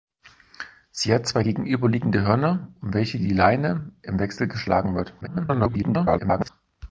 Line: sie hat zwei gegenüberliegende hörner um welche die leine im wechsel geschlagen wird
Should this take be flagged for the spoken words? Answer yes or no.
yes